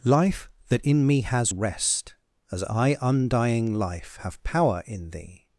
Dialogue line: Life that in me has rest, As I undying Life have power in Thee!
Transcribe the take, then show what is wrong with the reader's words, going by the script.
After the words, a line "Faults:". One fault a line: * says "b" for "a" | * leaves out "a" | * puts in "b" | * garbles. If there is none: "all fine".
Life that in me has rest, As I undying Life have power in Thee!
Faults:
all fine